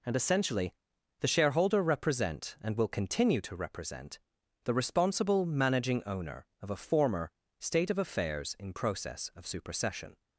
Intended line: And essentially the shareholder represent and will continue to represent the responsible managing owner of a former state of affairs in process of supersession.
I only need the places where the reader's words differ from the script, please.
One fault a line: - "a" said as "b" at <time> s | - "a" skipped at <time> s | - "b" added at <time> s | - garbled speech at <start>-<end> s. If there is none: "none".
none